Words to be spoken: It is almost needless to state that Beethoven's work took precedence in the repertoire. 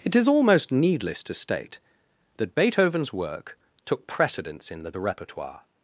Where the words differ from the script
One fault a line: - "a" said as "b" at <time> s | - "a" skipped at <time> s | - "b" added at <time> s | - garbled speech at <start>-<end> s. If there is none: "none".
- "the" added at 4.9 s